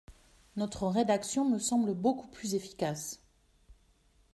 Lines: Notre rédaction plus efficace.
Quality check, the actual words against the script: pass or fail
fail